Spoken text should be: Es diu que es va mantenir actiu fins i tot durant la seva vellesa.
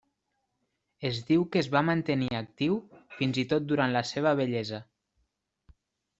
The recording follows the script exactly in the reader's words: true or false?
true